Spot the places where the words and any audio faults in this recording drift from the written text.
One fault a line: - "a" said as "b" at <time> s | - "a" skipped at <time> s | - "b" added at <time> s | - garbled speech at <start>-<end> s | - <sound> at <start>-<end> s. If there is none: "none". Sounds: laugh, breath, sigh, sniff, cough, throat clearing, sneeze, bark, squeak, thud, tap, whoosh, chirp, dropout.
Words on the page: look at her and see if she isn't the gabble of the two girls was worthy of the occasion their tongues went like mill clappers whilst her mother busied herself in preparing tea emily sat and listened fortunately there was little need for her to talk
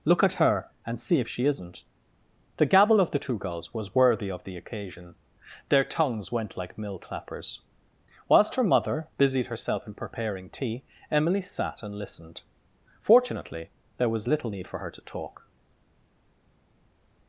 none